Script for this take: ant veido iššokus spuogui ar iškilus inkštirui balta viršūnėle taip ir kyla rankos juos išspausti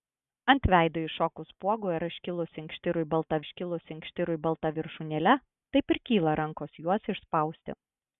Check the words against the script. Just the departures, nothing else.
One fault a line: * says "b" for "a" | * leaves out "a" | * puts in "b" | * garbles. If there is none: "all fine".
* puts in "iškilus inkštirui balta"